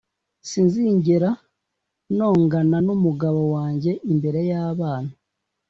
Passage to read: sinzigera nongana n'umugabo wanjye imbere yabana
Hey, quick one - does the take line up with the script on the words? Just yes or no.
yes